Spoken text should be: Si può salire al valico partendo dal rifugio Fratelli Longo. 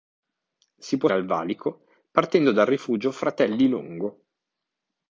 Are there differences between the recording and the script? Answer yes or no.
yes